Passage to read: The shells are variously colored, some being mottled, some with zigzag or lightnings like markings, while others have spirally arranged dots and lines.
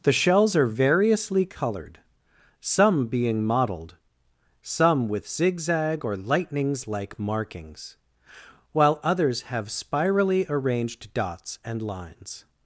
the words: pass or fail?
pass